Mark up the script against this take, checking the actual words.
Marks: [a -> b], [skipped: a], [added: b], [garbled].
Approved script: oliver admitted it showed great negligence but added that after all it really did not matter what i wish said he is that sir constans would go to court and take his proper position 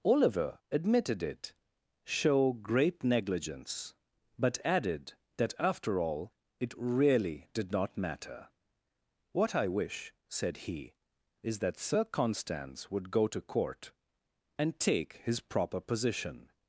oliver admitted it [showed -> show] great negligence but added that after all it really did not matter what i wish said he is that sir constans would go to court and take his proper position